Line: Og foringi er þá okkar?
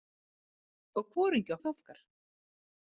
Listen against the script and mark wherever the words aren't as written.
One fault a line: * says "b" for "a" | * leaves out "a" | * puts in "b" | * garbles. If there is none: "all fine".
all fine